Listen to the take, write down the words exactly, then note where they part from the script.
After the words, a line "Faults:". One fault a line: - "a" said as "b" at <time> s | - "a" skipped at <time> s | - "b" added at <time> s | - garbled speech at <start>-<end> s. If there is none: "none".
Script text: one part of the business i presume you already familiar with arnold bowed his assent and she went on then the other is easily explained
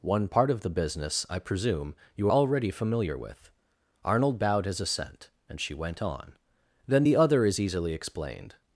one part of the business i presume you already familiar with arnold bowed his assent and she went on then the other is easily explained
Faults:
none